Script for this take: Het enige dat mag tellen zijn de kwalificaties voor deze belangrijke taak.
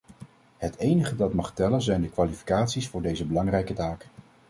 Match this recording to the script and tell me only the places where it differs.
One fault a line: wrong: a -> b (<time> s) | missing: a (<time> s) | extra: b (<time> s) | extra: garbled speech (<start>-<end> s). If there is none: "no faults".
no faults